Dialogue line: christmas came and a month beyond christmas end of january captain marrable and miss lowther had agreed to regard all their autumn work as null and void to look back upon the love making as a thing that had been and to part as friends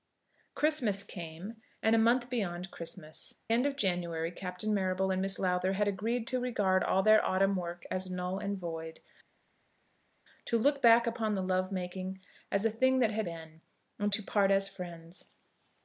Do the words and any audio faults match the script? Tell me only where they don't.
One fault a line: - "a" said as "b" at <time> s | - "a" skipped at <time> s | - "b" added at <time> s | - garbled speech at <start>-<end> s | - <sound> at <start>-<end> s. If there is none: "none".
none